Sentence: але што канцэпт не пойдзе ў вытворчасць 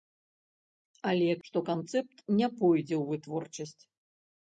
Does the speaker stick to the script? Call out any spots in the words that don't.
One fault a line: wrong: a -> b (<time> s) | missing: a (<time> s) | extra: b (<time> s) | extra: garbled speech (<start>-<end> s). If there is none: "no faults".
no faults